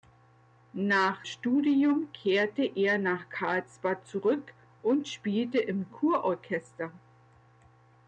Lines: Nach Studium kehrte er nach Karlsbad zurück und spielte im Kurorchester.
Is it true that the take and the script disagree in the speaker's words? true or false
false